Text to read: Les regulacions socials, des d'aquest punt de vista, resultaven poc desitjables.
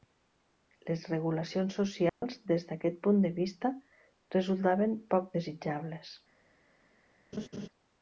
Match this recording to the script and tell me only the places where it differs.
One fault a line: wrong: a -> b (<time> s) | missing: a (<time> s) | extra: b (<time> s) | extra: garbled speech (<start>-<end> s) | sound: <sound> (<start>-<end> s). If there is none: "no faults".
sound: dropout (2.1-2.2 s)
sound: laugh (7.3-7.7 s)